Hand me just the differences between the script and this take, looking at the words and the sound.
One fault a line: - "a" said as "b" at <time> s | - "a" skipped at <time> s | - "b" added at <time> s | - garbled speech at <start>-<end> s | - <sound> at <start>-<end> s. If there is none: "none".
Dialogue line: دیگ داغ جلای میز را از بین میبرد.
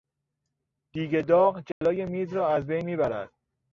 - dropout at 1.7-1.8 s